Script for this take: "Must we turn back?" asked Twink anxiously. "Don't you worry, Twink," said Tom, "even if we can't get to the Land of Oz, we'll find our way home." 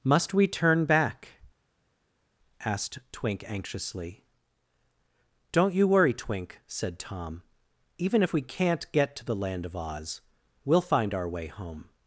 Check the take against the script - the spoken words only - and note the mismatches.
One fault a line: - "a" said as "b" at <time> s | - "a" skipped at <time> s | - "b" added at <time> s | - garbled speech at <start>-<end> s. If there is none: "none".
none